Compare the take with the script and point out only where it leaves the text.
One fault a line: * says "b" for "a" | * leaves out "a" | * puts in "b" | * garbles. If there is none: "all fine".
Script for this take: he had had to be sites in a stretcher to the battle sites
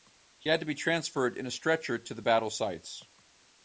* leaves out "had"
* says "transferred" for "sites"